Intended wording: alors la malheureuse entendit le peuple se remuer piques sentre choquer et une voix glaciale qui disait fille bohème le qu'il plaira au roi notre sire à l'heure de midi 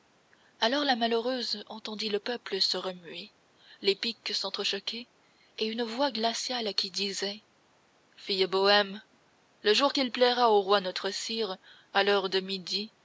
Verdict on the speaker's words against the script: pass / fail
fail